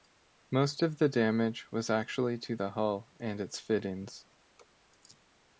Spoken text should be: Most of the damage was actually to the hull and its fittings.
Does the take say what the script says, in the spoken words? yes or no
yes